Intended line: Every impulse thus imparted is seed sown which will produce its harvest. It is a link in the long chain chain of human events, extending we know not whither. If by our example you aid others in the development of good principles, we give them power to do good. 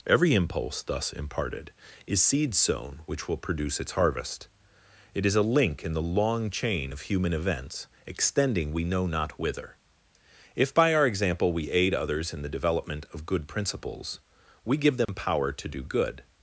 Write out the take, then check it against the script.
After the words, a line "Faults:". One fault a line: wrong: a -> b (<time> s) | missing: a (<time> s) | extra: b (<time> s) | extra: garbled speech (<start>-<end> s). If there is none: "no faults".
Every impulse thus imparted is seed sown which will produce its harvest. It is a link in the long chain of human events, extending we know not whither. If by our example we aid others in the development of good principles, we give them power to do good.
Faults:
missing: chain (6.9 s)
wrong: you -> we (11.5 s)